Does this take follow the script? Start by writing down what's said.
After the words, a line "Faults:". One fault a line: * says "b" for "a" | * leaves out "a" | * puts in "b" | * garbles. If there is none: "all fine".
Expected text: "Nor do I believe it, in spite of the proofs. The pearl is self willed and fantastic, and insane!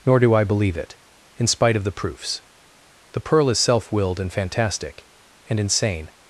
"Nor do I believe it, in spite of the proofs. The pearl is self willed and fantastic, and insane!
Faults:
all fine